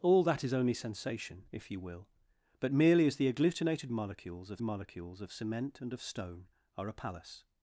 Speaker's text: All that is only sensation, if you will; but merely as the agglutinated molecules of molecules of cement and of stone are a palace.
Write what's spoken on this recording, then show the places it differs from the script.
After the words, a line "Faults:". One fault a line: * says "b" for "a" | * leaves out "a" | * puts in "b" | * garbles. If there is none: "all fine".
All that is only sensation, if you will; but merely as the agglutinated molecules of molecules of cement and of stone are a palace.
Faults:
all fine